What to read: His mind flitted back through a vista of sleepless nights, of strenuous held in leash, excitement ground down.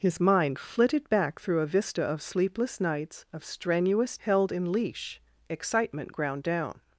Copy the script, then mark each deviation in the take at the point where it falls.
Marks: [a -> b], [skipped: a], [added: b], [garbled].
His mind flitted back through a vista of sleepless nights, of strenuous held in leash, excitement ground down.